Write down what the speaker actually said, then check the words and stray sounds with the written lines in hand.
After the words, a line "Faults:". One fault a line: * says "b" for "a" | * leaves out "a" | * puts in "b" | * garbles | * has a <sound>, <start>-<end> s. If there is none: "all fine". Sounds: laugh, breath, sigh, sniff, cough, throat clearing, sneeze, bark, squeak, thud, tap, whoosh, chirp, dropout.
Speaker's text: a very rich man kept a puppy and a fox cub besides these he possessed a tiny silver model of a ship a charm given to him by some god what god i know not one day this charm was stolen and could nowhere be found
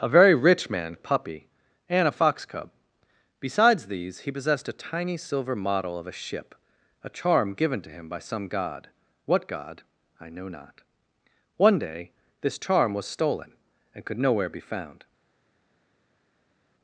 a very rich man a puppy and a fox cub besides these he possessed a tiny silver model of a ship a charm given to him by some god what god i know not one day this charm was stolen and could nowhere be found
Faults:
* leaves out "kept"